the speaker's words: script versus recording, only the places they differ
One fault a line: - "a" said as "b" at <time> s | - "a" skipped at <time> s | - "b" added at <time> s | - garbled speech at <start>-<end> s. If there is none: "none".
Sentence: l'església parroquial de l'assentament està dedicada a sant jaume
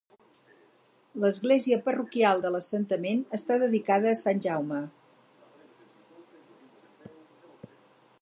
none